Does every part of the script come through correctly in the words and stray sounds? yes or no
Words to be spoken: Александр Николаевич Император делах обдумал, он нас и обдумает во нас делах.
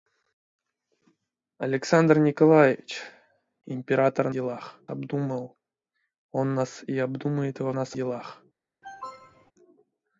no